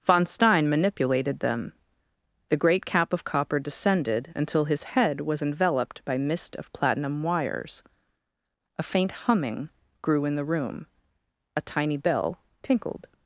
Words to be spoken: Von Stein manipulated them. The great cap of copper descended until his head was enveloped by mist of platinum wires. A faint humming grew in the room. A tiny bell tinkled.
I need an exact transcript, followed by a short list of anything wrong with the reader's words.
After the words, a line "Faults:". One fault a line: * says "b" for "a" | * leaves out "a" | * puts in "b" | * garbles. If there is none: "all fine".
Von Stein manipulated them. The great cap of copper descended until his head was enveloped by mist of platinum wires. A faint humming grew in the room. A tiny bell tinkled.
Faults:
all fine